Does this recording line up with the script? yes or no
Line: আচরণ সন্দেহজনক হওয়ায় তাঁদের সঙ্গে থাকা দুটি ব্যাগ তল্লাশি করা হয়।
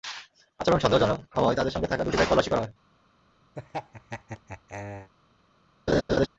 yes